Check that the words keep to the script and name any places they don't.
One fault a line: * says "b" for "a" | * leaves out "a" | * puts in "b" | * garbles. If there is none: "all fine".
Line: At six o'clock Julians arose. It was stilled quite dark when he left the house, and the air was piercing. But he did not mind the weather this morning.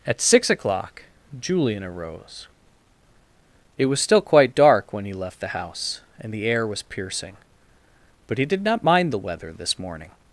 * says "Julian" for "Julians"
* says "still" for "stilled"